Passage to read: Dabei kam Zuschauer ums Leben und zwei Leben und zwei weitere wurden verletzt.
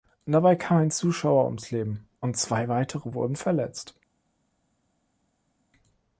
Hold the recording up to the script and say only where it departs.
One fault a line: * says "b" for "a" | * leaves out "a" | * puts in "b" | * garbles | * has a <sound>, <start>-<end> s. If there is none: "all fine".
* puts in "ein"
* leaves out "Leben und zwei"